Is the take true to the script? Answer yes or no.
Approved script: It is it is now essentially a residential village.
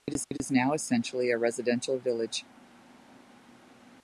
yes